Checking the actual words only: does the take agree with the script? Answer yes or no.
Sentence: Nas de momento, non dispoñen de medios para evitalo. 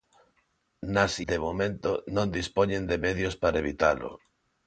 yes